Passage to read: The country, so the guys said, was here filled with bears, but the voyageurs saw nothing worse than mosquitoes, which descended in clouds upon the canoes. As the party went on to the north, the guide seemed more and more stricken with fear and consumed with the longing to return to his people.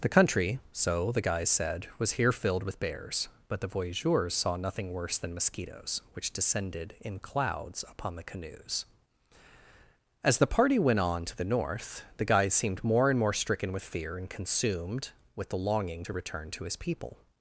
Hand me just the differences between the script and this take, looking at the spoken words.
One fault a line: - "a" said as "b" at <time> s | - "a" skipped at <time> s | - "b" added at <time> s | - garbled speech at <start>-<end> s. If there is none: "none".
none